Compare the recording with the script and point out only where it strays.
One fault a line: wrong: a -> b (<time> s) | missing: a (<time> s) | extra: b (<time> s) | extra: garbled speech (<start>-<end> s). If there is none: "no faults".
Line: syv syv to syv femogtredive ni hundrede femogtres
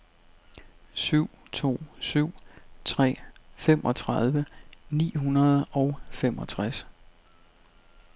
missing: syv (1.3 s)
extra: tre (2.9 s)
extra: og (5.7 s)